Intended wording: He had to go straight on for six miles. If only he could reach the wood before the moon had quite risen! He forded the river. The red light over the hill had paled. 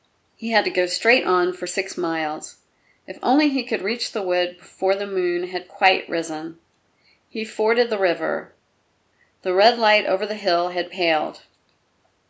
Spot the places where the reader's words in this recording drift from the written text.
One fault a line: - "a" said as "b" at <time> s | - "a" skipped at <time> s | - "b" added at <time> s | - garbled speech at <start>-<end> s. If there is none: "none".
none